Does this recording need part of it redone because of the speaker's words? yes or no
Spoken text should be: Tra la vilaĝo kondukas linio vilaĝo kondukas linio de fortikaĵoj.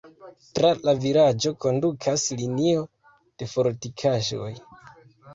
yes